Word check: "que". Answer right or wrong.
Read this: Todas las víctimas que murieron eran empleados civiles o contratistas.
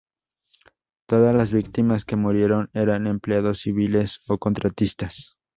right